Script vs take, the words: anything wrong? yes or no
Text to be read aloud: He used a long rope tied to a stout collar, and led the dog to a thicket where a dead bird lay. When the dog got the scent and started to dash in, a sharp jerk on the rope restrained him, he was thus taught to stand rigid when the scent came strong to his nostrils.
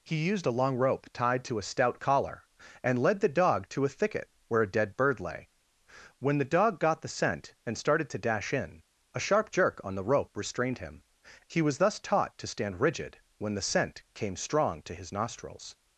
no